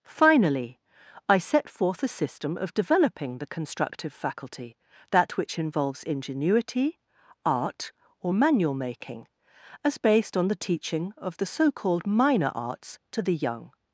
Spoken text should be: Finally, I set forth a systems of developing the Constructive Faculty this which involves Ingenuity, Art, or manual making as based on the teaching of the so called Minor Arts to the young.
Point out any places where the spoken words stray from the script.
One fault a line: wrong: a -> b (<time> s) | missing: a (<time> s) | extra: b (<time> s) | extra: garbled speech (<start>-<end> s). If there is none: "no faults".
wrong: systems -> system (2.1 s)
wrong: this -> that (5.1 s)